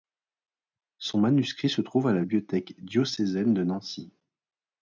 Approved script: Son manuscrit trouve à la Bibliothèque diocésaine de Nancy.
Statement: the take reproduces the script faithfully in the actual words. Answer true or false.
false